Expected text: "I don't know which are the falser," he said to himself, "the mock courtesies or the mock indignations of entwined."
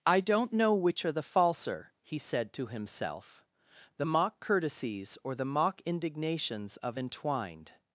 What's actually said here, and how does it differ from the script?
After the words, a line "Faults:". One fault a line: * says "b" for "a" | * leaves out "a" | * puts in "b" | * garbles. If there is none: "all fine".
"I don't know which are the falser," he said to himself, "the mock courtesies or the mock indignations of entwined."
Faults:
all fine